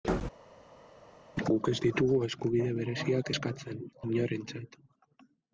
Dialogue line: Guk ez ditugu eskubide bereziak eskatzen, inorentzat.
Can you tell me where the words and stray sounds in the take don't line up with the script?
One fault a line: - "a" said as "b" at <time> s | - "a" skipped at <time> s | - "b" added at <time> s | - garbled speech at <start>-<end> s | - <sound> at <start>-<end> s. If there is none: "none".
none